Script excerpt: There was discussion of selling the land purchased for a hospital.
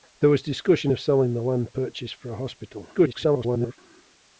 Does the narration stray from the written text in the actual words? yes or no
yes